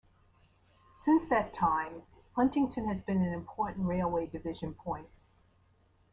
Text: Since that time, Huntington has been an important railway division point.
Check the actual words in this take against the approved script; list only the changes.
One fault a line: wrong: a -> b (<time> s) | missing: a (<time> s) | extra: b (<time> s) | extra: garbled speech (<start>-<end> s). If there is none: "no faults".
no faults